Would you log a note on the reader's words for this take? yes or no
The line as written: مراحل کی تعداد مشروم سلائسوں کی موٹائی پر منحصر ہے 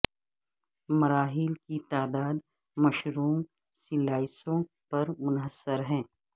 yes